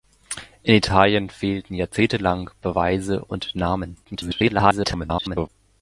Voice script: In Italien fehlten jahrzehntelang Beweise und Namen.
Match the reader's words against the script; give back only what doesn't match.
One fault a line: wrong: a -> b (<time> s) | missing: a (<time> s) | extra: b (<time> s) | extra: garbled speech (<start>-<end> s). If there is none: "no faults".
extra: garbled speech (4.0-5.5 s)